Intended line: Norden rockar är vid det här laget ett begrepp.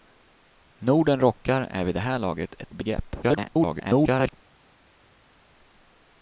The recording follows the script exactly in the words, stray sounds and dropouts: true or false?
false